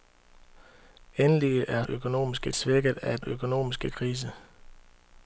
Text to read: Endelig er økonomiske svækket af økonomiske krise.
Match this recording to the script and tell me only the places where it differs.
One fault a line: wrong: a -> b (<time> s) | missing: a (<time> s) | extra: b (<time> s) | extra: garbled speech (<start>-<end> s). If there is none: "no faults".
no faults